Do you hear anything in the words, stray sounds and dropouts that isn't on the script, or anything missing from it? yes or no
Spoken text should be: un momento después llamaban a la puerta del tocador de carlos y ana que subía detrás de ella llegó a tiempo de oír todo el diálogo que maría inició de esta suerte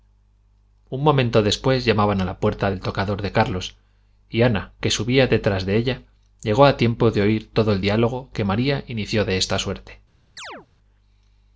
yes